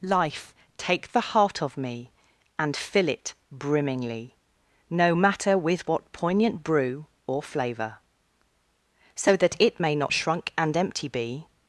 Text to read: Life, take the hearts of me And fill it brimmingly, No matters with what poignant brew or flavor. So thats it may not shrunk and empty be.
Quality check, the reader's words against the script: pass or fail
fail